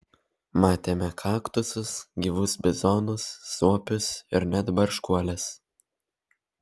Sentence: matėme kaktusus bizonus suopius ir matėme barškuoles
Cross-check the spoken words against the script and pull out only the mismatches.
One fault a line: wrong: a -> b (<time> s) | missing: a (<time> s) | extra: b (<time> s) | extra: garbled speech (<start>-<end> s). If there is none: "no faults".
extra: gyvus (2.3 s)
wrong: matėme -> net (4.5 s)